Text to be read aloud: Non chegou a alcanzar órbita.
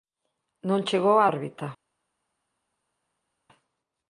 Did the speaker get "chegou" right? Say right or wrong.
right